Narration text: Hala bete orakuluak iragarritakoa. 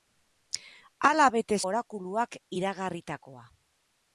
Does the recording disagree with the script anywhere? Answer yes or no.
no